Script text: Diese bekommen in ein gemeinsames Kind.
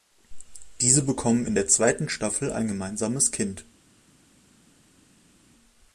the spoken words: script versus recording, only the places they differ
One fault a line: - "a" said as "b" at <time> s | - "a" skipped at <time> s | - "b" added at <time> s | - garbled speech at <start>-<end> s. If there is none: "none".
- "der zweiten Staffel" added at 1.5 s